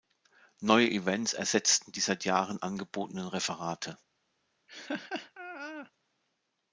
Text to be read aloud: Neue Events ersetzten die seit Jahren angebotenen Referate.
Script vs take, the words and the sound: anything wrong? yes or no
yes